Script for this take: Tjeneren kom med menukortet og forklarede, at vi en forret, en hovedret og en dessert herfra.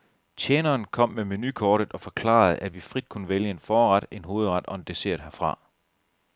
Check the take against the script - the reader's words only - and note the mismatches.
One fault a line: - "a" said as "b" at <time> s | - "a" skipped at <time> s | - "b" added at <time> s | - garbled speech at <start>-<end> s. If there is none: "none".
- "frit kunne vælge" added at 2.8 s